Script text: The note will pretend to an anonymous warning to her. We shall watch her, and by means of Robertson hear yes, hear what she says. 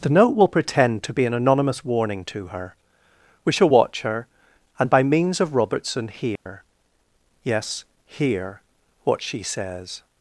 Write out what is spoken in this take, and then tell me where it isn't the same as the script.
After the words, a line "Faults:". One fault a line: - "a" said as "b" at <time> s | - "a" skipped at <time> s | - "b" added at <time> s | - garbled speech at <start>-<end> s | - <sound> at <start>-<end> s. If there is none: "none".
The note will pretend to be an anonymous warning to her. We shall watch her, and by means of Robertson hear yes, hear what she says.
Faults:
- "be" added at 1.1 s
- dropout at 6.4-6.5 s